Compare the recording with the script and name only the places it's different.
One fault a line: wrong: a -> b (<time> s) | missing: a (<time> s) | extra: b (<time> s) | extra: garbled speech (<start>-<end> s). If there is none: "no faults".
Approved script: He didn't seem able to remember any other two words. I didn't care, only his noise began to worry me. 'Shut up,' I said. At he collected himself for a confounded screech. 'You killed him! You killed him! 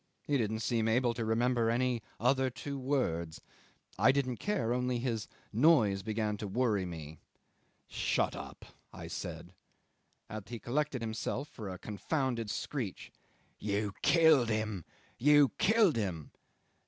no faults